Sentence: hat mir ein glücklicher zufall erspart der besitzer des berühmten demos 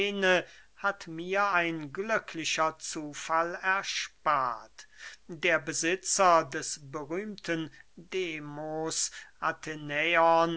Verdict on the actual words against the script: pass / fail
pass